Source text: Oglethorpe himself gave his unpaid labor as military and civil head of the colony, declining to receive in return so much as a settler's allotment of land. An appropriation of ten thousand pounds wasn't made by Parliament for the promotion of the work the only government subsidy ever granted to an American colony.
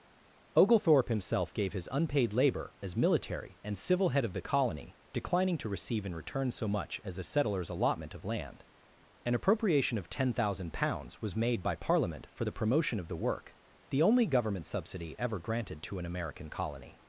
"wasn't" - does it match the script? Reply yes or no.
no